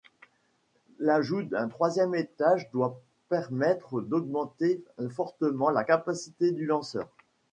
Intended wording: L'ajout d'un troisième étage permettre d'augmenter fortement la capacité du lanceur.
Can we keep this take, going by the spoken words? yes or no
no